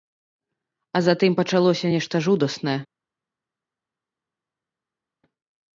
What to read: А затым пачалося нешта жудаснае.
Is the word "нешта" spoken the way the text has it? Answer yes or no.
yes